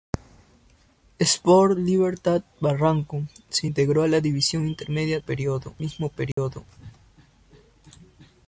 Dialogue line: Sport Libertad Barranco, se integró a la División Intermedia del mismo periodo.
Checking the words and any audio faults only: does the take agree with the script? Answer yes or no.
no